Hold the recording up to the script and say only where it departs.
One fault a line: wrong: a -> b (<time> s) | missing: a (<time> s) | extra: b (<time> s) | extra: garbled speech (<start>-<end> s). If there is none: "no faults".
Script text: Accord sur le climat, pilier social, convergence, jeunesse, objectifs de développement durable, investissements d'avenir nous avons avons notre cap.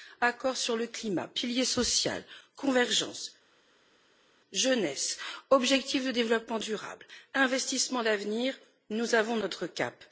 missing: avons (9.4 s)